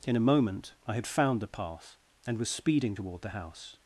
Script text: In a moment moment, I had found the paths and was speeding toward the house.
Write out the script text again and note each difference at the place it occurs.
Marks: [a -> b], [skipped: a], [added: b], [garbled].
In a moment [skipped: moment,] I had found the [paths -> path] and was speeding toward the house.